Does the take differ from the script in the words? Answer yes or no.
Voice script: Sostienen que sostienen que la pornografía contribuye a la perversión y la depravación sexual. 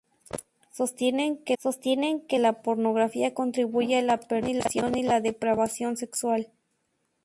no